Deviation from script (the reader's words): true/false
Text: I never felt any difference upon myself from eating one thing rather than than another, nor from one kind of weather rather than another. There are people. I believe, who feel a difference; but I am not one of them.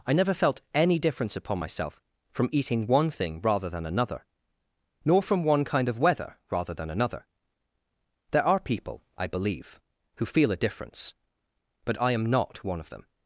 true